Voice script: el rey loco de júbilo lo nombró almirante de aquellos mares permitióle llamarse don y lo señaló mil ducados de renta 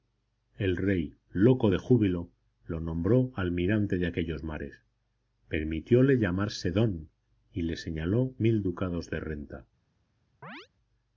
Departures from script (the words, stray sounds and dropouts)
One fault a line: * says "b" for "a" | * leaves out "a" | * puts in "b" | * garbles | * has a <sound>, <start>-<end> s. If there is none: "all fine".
* says "le" for "lo"
* has a chirp, 10.4-10.7 s